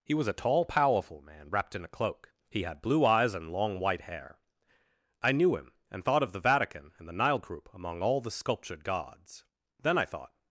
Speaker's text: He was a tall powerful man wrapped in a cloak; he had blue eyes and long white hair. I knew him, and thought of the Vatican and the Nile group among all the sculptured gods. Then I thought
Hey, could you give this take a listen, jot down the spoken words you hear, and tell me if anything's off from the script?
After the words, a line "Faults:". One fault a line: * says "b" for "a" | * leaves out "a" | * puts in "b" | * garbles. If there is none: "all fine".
He was a tall powerful man wrapped in a cloak; he had blue eyes and long white hair. I knew him, and thought of the Vatican and the Nile group among all the sculptured gods. Then I thought
Faults:
all fine